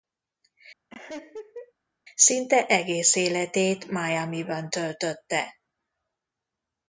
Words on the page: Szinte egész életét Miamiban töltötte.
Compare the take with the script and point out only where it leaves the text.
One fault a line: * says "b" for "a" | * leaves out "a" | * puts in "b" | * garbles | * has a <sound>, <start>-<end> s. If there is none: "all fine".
* has a laugh, 0.9-1.7 s